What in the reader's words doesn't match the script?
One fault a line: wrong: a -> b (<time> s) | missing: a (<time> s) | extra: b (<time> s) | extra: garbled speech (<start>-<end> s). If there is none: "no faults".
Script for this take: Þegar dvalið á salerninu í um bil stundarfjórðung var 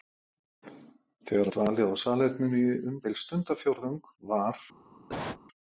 no faults